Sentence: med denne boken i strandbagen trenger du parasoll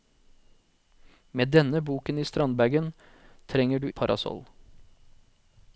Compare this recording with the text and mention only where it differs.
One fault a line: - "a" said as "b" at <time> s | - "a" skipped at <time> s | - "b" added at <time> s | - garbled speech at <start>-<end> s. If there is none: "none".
none